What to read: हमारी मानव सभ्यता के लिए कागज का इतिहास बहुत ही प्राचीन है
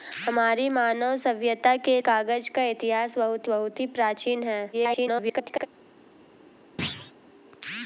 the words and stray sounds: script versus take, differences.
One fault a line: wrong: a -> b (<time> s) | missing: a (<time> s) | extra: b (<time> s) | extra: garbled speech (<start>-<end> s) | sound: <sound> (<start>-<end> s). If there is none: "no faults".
missing: लिए (2.0 s)
extra: बहुत (3.5 s)
extra: garbled speech (4.7-5.7 s)
sound: thud (6.8-7.1 s)